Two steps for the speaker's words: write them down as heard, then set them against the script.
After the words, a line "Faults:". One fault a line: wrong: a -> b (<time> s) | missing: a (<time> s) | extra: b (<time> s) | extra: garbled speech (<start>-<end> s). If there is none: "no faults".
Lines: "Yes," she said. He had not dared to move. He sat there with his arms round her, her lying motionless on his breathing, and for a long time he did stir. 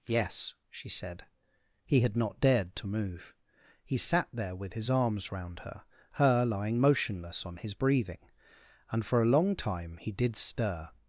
"Yes," she said. He had not dared to move. He sat there with his arms round her, her lying motionless on his breathing, and for a long time he did stir.
Faults:
no faults